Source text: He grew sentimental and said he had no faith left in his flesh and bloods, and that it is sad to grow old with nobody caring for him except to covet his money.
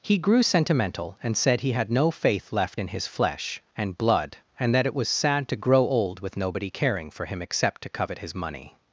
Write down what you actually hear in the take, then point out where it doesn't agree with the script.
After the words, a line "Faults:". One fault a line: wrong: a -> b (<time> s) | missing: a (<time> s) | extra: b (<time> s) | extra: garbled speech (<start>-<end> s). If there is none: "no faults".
He grew sentimental and said he had no faith left in his flesh and blood, and that it was sad to grow old with nobody caring for him except to covet his money.
Faults:
wrong: bloods -> blood (4.0 s)
wrong: is -> was (4.9 s)